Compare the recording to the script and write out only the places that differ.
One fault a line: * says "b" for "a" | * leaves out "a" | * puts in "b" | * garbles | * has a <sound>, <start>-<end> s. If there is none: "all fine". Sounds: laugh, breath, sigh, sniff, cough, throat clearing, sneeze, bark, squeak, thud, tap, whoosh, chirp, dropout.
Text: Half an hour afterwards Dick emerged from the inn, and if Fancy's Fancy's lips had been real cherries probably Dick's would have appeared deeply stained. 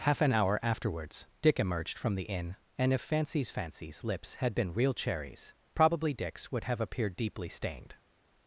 all fine